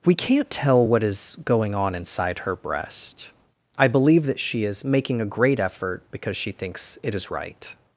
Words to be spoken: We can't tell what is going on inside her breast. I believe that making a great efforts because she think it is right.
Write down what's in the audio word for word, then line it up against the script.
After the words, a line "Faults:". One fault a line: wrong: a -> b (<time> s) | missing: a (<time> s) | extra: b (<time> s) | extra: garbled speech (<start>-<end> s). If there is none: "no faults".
We can't tell what is going on inside her breast. I believe that she is making a great effort because she thinks it is right.
Faults:
extra: she is (4.4 s)
wrong: efforts -> effort (5.6 s)
wrong: think -> thinks (6.5 s)